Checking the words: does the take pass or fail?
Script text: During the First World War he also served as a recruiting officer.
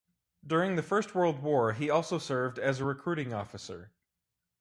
pass